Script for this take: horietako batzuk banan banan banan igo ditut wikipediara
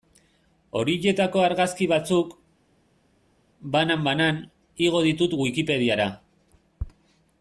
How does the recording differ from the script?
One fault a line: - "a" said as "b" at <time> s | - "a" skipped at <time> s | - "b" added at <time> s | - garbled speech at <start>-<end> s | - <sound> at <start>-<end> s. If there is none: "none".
- "argazki" added at 1.5 s
- "banan" skipped at 4.4 s